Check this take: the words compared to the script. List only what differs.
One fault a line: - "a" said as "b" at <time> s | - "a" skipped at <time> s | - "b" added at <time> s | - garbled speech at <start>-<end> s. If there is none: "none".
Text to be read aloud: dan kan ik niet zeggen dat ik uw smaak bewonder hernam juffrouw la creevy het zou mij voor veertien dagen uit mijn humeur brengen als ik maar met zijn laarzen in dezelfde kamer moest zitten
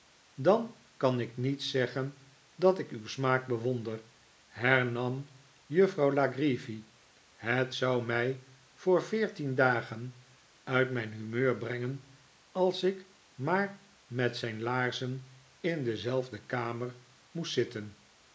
none